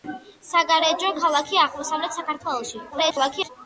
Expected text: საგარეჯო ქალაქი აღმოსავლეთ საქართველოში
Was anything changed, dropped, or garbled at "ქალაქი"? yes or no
no